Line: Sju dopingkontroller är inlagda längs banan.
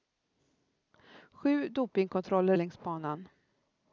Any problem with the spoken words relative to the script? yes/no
yes